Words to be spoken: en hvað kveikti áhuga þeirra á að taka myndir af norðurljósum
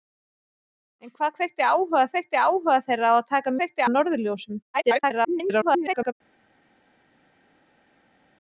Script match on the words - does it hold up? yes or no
no